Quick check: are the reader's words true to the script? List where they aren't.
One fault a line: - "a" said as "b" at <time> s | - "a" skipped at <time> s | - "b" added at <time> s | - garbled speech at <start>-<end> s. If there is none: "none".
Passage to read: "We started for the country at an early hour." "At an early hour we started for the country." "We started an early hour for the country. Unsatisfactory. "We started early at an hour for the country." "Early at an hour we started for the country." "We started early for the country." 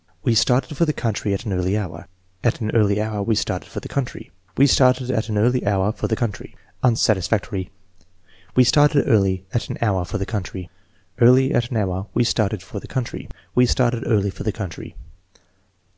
- "at" added at 5.1 s